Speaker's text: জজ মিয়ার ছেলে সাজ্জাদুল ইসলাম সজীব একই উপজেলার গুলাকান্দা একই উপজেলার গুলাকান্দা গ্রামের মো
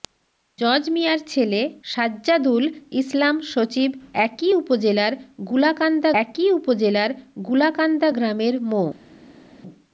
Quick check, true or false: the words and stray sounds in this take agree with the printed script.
true